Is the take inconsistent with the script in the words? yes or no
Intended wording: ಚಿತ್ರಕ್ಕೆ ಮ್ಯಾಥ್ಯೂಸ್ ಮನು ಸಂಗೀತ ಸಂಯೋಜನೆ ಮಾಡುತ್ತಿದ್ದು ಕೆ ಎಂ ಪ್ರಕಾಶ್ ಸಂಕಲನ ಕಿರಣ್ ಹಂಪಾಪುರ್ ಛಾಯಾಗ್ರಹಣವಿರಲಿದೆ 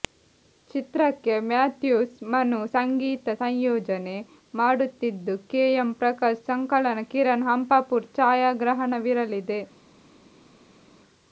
no